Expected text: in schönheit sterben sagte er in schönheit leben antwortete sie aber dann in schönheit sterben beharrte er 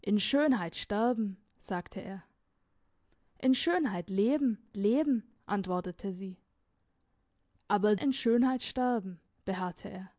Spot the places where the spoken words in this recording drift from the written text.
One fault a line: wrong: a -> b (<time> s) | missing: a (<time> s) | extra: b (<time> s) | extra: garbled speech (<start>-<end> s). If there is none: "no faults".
extra: leben (4.8 s)
missing: dann (7.9 s)